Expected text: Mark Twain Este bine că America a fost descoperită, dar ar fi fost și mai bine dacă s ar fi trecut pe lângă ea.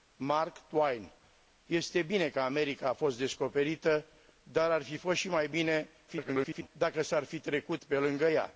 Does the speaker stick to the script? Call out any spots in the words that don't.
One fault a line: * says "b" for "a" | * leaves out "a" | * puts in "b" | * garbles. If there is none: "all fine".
* garbles